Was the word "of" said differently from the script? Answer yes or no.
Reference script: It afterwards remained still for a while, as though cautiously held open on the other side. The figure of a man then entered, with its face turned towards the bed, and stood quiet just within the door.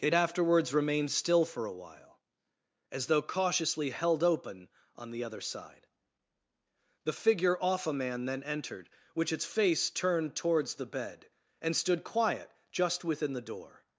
yes